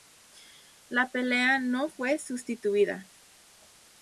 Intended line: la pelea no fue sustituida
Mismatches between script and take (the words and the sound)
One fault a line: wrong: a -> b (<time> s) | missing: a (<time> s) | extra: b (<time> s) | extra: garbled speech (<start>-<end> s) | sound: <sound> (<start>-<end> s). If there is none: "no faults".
no faults